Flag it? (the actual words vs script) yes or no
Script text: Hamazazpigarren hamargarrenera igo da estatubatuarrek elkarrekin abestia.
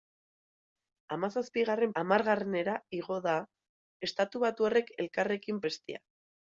no